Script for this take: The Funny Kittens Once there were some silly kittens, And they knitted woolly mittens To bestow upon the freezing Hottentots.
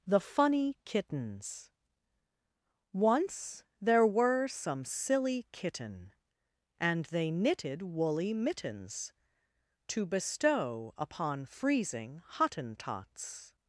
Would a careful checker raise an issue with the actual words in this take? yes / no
yes